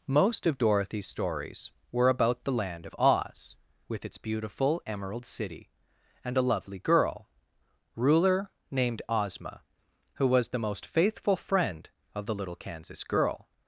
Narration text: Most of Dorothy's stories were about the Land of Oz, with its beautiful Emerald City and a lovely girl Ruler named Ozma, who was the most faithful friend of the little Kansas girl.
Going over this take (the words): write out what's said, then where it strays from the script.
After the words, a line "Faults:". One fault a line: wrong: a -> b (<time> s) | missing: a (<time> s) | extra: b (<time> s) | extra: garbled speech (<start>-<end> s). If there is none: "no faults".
Most of Dorothy's stories were about the Land of Oz, with its beautiful Emerald City and a lovely girl Ruler named Ozma, who was the most faithful friend of the little Kansas girl.
Faults:
no faults